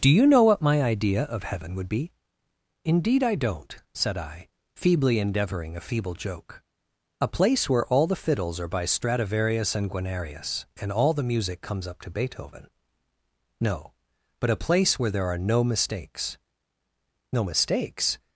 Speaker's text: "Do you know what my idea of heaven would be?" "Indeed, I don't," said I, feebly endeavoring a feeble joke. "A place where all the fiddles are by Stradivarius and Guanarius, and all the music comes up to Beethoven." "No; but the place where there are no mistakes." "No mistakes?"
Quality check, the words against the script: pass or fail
fail